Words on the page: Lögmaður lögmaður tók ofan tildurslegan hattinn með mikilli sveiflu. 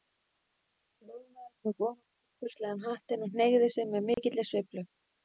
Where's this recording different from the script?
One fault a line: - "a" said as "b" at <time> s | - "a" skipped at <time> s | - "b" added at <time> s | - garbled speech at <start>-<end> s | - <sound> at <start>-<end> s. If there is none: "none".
- "lögmaður" skipped at 1.5 s
- "og hneigði sig" added at 3.3 s
- dropout at 4.1-4.2 s